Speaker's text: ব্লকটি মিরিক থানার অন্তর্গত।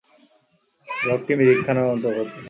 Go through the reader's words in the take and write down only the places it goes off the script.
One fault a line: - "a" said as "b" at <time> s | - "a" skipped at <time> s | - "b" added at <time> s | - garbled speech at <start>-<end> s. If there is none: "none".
none